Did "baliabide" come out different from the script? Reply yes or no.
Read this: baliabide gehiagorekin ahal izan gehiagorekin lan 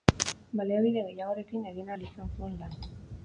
no